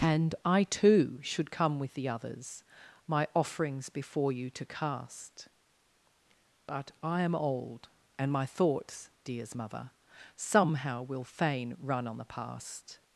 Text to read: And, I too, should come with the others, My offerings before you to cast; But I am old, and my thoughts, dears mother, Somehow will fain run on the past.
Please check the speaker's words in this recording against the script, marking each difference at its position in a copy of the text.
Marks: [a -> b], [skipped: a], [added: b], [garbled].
And, I too, should come with the others, My offerings before you to cast; But I am old, and my thoughts, dears mother, Somehow will fain run on the past.